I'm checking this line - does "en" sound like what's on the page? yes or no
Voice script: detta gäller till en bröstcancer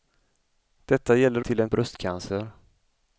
yes